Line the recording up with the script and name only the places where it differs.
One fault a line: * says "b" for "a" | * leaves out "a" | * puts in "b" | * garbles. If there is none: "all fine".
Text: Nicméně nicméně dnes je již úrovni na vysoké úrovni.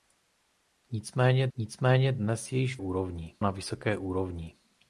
all fine